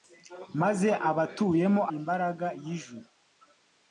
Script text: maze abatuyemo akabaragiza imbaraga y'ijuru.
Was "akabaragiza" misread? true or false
true